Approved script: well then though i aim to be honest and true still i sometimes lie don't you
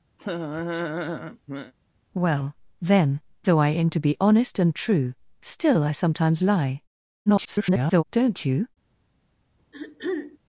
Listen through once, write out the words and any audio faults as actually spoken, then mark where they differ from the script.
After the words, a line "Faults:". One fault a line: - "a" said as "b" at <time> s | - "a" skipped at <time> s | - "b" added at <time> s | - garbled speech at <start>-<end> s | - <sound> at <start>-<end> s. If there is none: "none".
well then though i aim to be honest and true still i sometimes lie [garbled] don't you
Faults:
- laugh at 0.2-1.7 s
- garbled speech at 7.3-8.0 s
- throat clearing at 9.6-10.4 s